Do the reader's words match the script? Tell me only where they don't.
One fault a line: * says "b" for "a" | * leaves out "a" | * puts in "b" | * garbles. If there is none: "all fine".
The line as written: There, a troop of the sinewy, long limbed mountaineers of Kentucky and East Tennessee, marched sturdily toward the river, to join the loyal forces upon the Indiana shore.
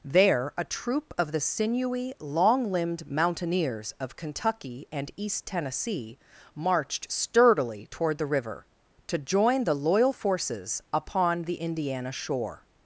all fine